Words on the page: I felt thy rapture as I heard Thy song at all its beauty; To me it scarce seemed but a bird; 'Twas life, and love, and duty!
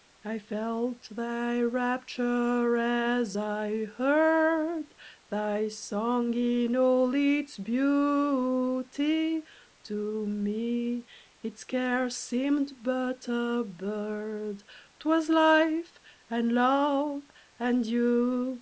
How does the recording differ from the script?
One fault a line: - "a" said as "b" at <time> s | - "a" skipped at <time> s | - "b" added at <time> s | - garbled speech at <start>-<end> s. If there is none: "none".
- "at" said as "in" at 6.3 s